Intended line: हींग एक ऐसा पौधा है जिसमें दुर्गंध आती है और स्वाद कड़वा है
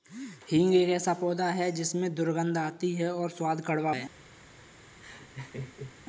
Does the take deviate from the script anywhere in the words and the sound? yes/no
yes